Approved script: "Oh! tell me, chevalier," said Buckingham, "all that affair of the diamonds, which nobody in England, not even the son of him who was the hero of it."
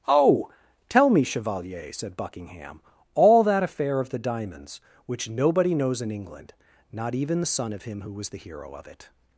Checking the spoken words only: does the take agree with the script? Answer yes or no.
no